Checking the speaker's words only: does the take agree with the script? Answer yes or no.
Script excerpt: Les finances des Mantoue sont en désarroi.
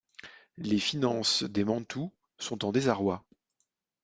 yes